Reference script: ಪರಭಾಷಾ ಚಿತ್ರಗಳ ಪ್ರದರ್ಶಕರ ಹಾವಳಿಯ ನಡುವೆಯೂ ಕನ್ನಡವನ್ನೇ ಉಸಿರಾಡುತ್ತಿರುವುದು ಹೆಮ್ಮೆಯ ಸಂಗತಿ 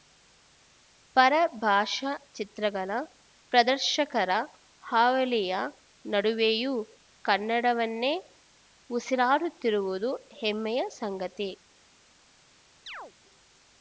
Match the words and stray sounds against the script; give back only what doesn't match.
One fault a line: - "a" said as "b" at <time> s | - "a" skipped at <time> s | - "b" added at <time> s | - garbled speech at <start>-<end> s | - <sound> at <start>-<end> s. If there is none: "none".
- chirp at 12.9-13.1 s